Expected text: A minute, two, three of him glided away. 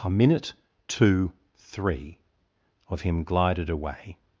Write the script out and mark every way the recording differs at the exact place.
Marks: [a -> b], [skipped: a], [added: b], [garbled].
A minute, two, three of him glided away.